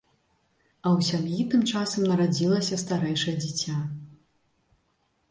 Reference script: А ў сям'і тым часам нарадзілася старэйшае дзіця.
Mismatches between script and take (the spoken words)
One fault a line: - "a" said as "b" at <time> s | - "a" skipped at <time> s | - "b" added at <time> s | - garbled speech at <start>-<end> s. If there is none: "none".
none